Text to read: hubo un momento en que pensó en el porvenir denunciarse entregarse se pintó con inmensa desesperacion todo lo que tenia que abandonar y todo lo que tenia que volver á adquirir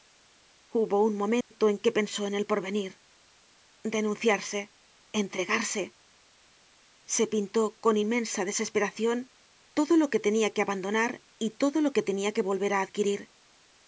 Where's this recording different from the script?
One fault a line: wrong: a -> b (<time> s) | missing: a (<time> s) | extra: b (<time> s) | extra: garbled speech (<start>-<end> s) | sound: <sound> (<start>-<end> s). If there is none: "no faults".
sound: dropout (1.4-1.5 s)